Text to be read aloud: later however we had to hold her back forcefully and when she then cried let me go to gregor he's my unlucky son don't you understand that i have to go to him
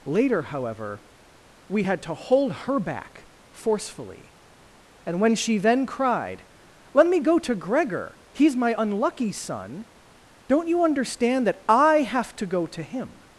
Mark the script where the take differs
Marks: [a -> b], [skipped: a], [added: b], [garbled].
later however we had to hold her back forcefully and when she then cried let me go to gregor he's my unlucky son don't you understand that i have to go to him